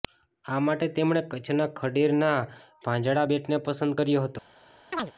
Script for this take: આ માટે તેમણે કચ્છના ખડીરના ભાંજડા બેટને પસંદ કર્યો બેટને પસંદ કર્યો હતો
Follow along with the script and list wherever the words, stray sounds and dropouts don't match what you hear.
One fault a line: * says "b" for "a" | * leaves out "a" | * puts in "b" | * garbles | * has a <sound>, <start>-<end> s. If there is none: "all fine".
* leaves out "બેટને પસંદ કર્યો"
* has a chirp, 4.9-5.1 s